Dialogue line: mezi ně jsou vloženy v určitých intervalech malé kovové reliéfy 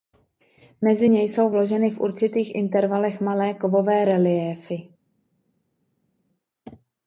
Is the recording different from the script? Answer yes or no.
no